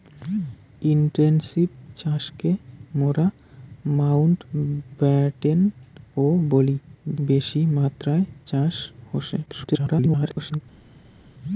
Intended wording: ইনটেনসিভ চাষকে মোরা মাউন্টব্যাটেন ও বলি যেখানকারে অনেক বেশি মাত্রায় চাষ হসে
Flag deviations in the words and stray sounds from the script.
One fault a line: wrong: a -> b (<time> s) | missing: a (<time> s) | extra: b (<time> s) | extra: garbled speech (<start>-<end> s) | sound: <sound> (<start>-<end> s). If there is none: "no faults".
missing: যেখানকারে অনেক (6.8 s)
extra: garbled speech (9.5-10.6 s)